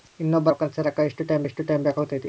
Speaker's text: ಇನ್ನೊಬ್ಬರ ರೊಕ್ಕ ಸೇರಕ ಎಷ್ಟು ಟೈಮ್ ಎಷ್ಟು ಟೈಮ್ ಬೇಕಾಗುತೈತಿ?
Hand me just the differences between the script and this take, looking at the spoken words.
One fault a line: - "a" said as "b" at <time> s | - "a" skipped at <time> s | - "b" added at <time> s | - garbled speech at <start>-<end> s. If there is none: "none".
none